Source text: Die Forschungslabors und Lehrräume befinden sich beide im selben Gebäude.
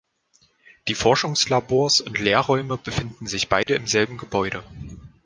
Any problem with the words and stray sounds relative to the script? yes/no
yes